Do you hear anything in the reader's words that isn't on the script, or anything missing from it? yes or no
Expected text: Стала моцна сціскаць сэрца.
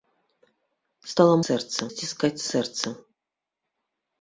yes